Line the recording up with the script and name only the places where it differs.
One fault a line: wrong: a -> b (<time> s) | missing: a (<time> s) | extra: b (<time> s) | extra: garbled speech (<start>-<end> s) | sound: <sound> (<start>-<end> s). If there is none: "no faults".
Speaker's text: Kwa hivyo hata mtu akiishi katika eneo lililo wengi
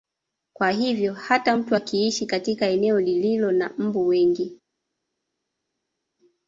extra: na mbu (3.5 s)